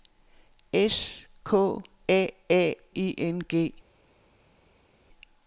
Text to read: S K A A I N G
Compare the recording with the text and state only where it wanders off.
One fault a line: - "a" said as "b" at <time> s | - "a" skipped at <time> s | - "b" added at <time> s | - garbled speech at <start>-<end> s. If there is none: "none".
none